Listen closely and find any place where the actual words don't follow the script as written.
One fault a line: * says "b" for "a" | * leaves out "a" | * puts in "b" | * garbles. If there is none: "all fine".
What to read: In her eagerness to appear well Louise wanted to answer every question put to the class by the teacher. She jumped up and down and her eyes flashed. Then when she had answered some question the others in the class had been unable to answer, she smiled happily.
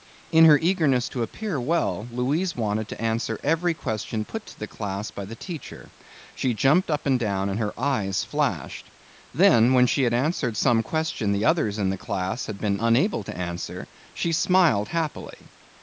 all fine